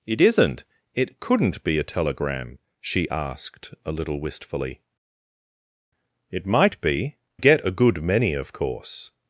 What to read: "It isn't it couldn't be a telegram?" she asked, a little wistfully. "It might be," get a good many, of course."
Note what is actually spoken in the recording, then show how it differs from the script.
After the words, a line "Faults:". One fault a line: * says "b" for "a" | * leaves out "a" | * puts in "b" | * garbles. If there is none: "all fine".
"It isn't it couldn't be a telegram?" she asked, a little wistfully. "It might be," get a good many, of course."
Faults:
all fine